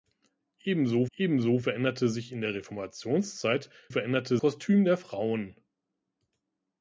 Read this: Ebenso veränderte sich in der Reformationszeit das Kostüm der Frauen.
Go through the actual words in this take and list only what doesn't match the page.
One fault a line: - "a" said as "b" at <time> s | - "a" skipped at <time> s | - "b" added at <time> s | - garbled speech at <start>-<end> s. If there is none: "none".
- "ebenso" added at 1.2 s
- "das" said as "veränderte" at 3.9 s